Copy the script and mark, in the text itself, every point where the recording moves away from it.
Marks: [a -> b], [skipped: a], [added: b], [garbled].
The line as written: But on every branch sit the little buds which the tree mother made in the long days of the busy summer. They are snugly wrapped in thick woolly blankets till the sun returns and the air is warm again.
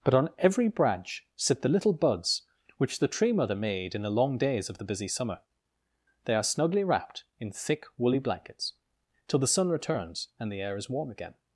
But on every branch sit the little buds which the tree mother made in the long days of the busy summer. They are snugly wrapped in thick woolly blankets till the sun returns and the air is warm again.